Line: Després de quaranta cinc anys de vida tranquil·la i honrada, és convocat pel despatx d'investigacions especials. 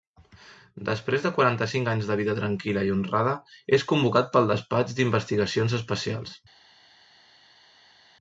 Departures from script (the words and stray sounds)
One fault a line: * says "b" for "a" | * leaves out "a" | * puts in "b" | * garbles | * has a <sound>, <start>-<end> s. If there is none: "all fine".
all fine